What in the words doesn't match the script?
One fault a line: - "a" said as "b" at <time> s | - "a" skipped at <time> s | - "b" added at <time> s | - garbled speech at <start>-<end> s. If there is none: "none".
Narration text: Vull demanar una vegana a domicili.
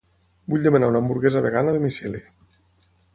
- "hamburguesa" added at 1.0 s